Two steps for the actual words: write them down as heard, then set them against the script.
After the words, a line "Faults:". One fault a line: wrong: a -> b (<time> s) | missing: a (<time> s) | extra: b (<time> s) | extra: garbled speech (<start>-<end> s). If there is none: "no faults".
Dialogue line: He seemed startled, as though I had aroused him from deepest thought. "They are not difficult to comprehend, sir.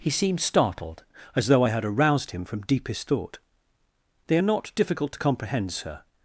He seemed startled, as though I had aroused him from deepest thought. "They are not difficult to comprehend, sir.
Faults:
no faults